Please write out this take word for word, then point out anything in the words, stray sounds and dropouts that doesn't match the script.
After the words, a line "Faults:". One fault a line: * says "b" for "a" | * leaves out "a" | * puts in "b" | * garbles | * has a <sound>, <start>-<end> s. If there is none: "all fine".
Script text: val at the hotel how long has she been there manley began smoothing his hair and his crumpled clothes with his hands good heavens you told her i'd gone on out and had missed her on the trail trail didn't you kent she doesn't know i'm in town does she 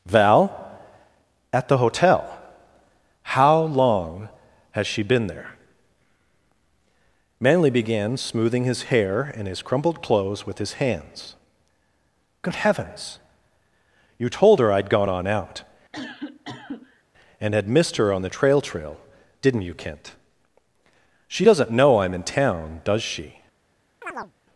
val at the hotel how long has she been there manley began smoothing his hair and his crumpled clothes with his hands good heavens you told her i'd gone on out and had missed her on the trail trail didn't you kent she doesn't know i'm in town does she
Faults:
* has a cough, 15.9-17.0 s
* has a chirp, 24.0-24.3 s